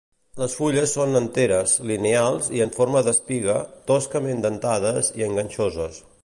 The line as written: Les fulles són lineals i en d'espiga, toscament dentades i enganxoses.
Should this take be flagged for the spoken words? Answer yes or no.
yes